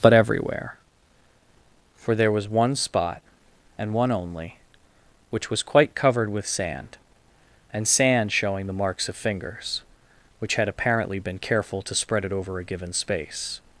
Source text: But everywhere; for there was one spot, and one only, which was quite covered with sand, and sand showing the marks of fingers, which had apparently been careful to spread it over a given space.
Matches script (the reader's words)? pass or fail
pass